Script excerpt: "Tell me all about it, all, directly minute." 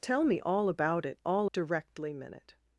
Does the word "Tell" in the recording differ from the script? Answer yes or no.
no